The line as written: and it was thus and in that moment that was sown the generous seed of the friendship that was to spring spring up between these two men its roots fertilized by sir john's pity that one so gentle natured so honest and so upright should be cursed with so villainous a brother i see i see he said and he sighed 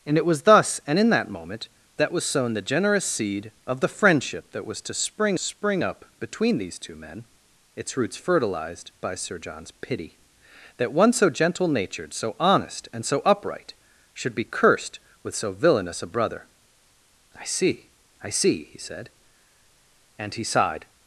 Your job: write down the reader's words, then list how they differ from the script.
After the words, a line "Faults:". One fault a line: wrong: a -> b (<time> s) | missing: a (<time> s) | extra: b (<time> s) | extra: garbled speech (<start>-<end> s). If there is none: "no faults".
and it was thus and in that moment that was sown the generous seed of the friendship that was to spring spring up between these two men its roots fertilized by sir john's pity that one so gentle natured so honest and so upright should be cursed with so villainous a brother i see i see he said and he sighed
Faults:
no faults